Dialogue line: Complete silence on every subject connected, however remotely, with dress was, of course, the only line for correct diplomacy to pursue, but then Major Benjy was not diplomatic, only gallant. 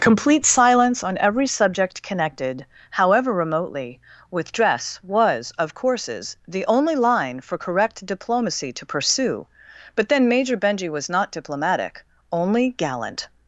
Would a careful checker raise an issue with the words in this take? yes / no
yes